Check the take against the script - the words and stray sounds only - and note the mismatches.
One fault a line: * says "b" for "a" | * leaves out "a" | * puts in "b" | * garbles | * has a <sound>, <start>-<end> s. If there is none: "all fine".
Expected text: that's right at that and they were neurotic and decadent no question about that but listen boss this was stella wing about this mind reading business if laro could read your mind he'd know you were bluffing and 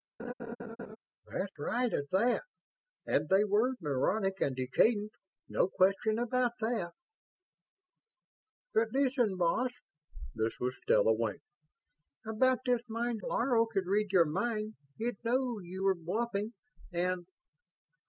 * has a laugh, 0.2-1.0 s
* leaves out "reading business if"